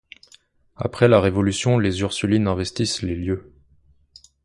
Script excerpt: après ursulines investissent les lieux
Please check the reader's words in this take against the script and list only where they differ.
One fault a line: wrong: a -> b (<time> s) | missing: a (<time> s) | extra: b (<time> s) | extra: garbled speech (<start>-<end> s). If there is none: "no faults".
extra: la révolution les (1.1 s)